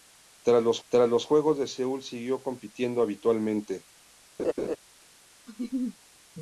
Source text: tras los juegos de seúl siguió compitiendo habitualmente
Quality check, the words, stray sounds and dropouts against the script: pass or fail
fail